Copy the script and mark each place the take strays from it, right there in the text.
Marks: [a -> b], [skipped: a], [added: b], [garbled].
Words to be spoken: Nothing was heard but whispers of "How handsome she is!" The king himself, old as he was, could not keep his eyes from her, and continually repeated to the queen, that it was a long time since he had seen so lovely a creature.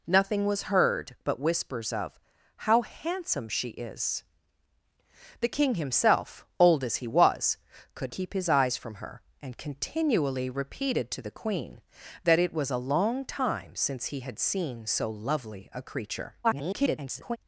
Nothing was heard but whispers of "How handsome she is!" The king himself, old as he was, could [skipped: not] keep his eyes from her, and continually repeated to the queen, that it was a long time since he had seen so lovely a creature. [garbled]